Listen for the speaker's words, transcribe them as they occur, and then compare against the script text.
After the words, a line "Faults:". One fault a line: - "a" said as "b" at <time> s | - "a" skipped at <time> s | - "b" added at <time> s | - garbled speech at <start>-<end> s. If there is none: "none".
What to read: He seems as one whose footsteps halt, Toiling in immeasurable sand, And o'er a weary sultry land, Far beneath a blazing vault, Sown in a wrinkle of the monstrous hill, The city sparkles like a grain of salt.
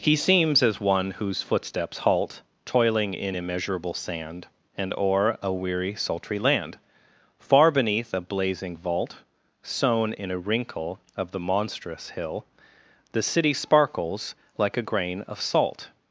He seems as one whose footsteps halt, Toiling in immeasurable sand, And o'er a weary sultry land, Far beneath a blazing vault, Sown in a wrinkle of the monstrous hill, The city sparkles like a grain of salt.
Faults:
none